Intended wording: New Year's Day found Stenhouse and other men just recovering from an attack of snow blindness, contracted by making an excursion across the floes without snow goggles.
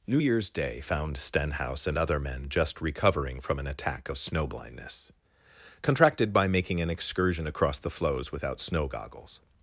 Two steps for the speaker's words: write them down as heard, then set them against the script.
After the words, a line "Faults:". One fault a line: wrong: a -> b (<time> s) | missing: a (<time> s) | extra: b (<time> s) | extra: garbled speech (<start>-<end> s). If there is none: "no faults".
New Year's Day found Stenhouse and other men just recovering from an attack of snow blindness, contracted by making an excursion across the floes without snow goggles.
Faults:
no faults